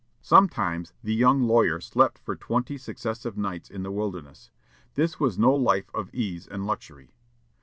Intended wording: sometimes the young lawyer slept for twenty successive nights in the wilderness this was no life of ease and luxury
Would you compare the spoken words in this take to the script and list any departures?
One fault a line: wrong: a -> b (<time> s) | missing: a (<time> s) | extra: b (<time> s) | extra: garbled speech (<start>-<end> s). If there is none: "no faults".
no faults